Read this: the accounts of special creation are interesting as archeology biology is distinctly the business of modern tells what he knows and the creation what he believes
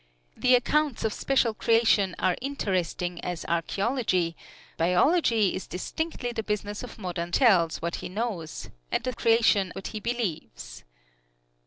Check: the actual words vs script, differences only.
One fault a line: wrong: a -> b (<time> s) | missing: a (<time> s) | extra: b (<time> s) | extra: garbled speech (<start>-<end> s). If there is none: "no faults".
no faults